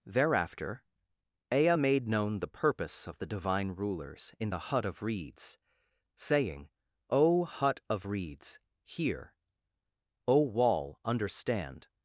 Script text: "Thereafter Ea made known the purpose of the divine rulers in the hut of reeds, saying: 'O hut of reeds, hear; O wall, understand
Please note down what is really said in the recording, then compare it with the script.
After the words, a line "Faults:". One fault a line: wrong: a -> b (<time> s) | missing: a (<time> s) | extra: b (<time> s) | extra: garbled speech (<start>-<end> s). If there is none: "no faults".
"Thereafter Ea made known the purpose of the divine rulers in the hut of reeds, saying: 'O hut of reeds, hear; O wall, understand
Faults:
no faults